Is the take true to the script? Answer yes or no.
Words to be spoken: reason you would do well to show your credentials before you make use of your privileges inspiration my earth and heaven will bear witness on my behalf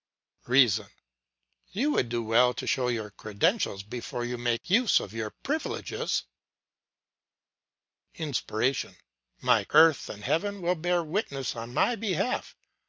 yes